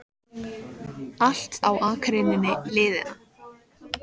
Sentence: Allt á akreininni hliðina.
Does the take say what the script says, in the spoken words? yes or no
yes